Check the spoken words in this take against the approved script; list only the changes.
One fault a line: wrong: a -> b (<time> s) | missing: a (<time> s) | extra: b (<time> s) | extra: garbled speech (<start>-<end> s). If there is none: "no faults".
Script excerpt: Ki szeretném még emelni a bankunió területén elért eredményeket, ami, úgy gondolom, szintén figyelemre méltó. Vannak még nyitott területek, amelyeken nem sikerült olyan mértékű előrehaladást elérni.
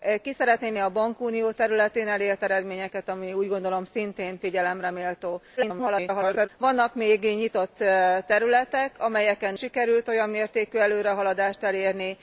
missing: még emelni (0.7 s)
extra: garbled speech (5.6-6.5 s)
missing: nem (9.5 s)